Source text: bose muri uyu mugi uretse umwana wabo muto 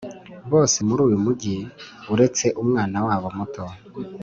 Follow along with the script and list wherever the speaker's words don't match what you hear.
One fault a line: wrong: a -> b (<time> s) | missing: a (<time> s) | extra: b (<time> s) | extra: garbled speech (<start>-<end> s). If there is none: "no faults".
no faults